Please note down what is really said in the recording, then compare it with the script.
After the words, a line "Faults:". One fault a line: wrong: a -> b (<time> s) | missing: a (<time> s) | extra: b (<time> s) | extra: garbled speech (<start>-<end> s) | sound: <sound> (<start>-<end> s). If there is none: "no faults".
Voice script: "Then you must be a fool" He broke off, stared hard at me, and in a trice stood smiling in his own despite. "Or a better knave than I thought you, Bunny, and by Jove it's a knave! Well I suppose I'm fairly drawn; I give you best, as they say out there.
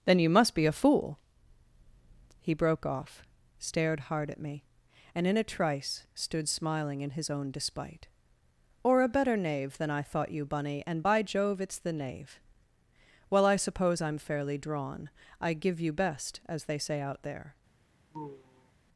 "Then you must be a fool" He broke off, stared hard at me, and in a trice stood smiling in his own despite. "Or a better knave than I thought you, Bunny, and by Jove it's the knave! Well I suppose I'm fairly drawn; I give you best, as they say out there.
Faults:
wrong: a -> the (11.8 s)
sound: sigh (18.1-18.7 s)